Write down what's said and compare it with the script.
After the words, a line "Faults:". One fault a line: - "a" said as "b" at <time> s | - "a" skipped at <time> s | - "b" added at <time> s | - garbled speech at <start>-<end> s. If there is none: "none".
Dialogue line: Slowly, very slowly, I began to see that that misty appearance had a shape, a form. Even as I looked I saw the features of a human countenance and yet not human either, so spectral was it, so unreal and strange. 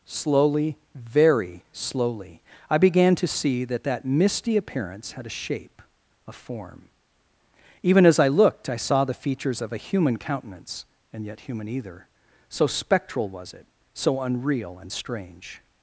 Slowly, very slowly, I began to see that that misty appearance had a shape, a form. Even as I looked I saw the features of a human countenance and yet human either, so spectral was it, so unreal and strange.
Faults:
- "not" skipped at 11.4 s